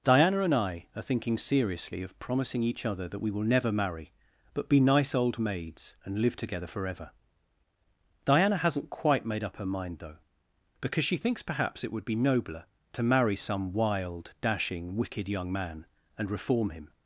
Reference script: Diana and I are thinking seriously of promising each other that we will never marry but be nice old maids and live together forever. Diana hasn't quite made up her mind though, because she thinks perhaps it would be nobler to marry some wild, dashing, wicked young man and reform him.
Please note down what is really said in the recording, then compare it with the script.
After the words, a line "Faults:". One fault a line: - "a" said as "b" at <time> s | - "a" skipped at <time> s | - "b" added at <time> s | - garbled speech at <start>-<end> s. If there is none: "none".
Diana and I are thinking seriously of promising each other that we will never marry but be nice old maids and live together forever. Diana hasn't quite made up her mind though, because she thinks perhaps it would be nobler to marry some wild, dashing, wicked young man and reform him.
Faults:
none